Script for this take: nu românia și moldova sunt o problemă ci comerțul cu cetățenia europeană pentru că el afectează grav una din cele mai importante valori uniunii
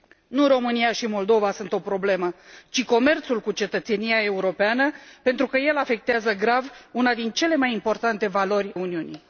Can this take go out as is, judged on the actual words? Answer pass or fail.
pass